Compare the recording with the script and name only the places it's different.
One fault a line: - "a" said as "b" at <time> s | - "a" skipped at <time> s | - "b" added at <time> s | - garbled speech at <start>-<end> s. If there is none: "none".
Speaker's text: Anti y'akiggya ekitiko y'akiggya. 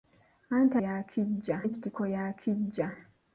none